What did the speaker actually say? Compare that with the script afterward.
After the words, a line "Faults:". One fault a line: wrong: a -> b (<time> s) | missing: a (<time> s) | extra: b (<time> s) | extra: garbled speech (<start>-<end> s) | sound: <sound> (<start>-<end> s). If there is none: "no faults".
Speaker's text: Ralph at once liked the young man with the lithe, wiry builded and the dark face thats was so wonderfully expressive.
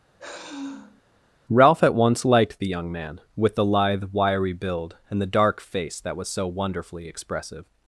Ralph at once liked the young man with the lithe, wiry build and the dark face that was so wonderfully expressive.
Faults:
sound: sigh (0.2-1.0 s)
wrong: builded -> build (4.5 s)
wrong: thats -> that (6.0 s)